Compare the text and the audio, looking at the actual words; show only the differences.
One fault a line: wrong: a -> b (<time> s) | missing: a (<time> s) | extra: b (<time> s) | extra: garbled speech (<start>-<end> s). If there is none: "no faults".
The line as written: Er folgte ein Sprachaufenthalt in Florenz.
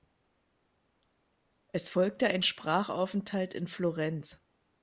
wrong: Er -> Es (1.7 s)